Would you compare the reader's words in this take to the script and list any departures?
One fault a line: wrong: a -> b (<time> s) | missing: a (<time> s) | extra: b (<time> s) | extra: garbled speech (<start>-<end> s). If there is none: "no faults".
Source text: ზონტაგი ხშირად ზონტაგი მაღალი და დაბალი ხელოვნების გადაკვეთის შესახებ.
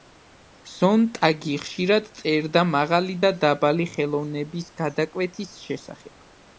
wrong: ზონტაგი -> წერდა (2.2 s)